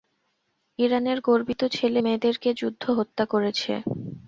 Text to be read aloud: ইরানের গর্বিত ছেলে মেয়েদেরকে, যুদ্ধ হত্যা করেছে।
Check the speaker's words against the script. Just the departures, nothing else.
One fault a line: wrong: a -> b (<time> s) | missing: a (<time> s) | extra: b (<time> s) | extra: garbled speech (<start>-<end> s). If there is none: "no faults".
no faults